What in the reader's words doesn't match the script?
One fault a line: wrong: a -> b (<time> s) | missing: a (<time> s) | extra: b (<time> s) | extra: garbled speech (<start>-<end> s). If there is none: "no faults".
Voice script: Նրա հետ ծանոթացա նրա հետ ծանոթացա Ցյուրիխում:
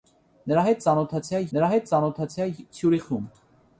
no faults